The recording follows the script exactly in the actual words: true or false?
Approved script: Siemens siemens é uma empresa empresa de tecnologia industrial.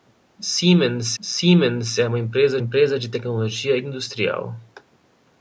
true